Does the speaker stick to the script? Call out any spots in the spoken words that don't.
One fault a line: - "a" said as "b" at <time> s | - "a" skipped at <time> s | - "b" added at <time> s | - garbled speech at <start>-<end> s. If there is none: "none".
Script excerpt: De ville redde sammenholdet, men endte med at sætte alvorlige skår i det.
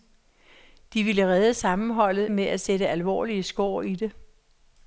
- "men endte" skipped at 2.3 s